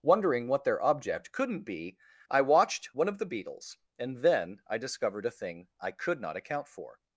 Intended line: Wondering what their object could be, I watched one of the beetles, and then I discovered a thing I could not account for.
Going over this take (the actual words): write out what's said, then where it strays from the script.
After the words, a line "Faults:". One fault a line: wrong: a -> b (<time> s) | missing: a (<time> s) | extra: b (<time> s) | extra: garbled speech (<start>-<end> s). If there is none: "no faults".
Wondering what their object couldn't be, I watched one of the beetles, and then I discovered a thing I could not account for.
Faults:
wrong: could -> couldn't (1.3 s)